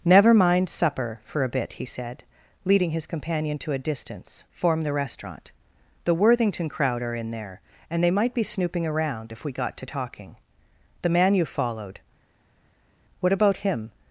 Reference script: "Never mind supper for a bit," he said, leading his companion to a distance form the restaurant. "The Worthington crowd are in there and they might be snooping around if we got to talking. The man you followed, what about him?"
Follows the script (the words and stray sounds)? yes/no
yes